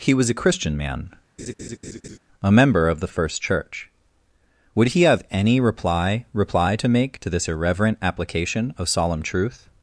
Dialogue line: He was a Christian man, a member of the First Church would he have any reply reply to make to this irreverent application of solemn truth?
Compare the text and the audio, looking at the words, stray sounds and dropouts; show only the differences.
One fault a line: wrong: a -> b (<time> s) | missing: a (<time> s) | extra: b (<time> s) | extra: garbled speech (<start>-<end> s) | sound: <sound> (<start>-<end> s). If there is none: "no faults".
sound: laugh (1.4-2.2 s)